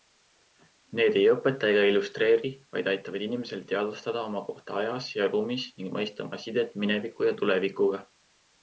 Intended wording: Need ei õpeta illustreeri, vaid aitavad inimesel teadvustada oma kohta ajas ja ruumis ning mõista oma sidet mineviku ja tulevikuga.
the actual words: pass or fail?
fail